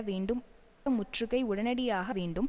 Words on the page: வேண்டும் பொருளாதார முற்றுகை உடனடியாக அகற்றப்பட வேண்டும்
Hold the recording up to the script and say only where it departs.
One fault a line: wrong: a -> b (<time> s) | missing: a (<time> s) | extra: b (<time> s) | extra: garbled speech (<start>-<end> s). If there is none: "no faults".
missing: பொருளாதார (0.4 s)
missing: அகற்றப்பட (2.1 s)